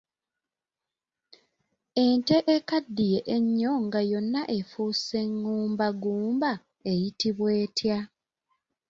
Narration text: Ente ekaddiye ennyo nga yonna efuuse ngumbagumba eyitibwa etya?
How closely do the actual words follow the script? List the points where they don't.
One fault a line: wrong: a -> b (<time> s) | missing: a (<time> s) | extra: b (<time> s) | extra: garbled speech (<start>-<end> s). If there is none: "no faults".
no faults